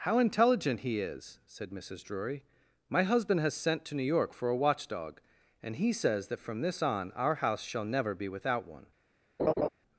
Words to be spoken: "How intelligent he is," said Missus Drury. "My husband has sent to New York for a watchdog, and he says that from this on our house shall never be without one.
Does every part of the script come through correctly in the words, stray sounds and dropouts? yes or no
no